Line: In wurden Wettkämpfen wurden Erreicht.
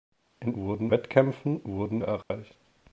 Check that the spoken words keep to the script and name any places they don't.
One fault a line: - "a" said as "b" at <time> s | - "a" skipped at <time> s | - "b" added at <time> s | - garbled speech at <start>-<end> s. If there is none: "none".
none